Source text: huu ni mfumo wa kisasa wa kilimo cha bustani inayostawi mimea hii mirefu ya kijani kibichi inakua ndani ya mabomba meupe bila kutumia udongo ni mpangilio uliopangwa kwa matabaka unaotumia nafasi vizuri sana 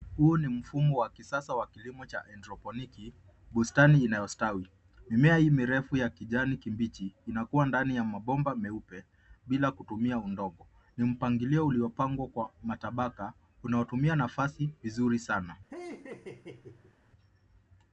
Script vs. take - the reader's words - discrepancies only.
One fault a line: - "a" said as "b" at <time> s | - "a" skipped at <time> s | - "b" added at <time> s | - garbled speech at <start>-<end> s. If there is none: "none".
- "haidroponiki" added at 2.2 s